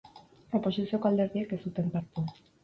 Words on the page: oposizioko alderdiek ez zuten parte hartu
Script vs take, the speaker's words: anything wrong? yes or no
yes